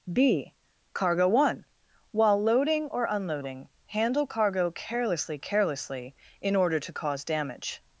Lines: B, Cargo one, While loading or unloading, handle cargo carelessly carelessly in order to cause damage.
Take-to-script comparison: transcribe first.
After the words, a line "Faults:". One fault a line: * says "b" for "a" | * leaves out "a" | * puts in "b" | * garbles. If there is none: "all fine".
B, Cargo one, While loading or unloading, handle cargo carelessly carelessly in order to cause damage.
Faults:
all fine